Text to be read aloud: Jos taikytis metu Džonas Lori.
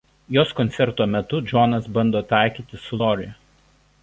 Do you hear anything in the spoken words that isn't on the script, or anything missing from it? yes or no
yes